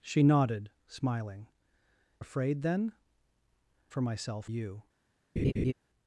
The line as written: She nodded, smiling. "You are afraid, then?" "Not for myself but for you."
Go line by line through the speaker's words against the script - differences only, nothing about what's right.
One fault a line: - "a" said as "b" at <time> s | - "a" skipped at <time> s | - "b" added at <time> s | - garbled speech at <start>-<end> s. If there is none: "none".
- "You are" skipped at 1.5 s
- "Not" skipped at 2.9 s
- "but for" skipped at 4.5 s